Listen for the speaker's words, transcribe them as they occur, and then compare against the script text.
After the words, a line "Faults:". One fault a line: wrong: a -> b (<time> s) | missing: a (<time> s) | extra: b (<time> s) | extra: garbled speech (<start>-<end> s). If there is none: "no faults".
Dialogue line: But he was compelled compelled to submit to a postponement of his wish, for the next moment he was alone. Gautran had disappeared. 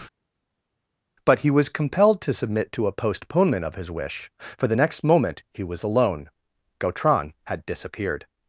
But he was compelled to submit to a postponement of his wish, for the next moment he was alone. Gautran had disappeared.
Faults:
missing: compelled (2.2 s)